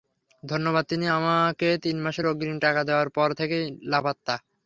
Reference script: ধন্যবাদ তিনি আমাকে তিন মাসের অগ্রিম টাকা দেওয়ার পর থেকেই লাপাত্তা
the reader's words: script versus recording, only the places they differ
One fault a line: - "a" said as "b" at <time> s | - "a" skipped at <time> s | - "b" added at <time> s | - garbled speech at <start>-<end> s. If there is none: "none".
none